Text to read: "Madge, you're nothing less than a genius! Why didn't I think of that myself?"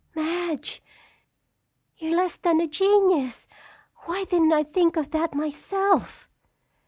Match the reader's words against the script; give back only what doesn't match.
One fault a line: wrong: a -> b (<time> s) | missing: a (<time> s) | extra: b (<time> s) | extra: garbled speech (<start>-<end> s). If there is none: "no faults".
missing: nothing (2.1 s)